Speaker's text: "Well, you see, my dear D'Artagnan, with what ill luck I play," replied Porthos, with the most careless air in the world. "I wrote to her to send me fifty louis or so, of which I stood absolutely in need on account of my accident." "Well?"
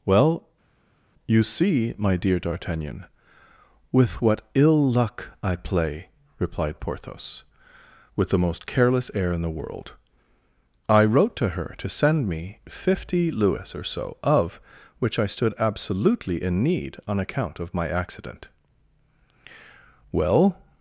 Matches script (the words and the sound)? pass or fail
pass